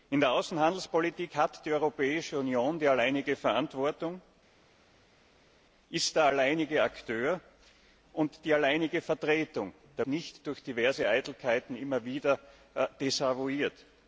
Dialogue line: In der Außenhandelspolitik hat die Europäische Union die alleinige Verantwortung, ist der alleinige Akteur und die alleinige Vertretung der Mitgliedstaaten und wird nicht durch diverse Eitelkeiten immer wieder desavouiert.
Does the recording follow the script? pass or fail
fail